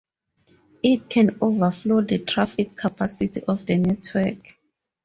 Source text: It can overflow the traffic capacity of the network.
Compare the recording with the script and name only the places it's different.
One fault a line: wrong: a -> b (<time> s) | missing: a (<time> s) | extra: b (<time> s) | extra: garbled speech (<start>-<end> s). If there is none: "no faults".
no faults